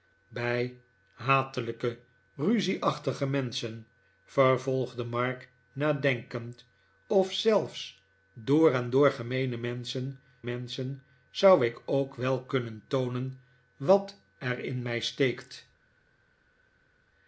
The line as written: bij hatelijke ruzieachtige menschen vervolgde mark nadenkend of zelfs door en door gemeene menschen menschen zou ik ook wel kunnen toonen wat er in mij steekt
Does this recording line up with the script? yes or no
yes